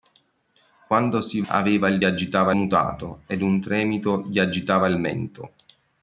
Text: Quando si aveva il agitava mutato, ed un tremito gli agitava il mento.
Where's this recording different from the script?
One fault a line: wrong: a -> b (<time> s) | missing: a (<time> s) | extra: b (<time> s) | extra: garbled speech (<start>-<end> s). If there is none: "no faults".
no faults